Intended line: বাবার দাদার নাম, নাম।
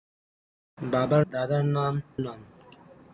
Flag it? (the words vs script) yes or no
no